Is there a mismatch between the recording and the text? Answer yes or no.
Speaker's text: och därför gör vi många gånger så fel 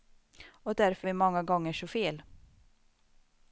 yes